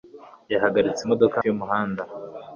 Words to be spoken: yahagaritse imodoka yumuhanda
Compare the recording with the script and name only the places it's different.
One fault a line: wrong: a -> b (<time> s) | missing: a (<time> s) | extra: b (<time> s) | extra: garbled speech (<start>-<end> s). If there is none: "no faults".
no faults